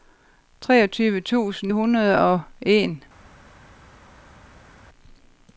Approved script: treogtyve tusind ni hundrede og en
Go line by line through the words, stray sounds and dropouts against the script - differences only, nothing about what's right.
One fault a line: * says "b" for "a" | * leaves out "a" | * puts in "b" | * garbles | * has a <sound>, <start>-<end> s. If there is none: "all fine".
* leaves out "ni"